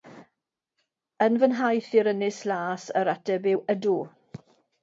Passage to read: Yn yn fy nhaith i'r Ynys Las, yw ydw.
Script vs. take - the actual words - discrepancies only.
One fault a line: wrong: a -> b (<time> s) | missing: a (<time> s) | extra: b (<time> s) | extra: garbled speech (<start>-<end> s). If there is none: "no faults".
missing: yn (1.4 s)
extra: yr ateb (3.0 s)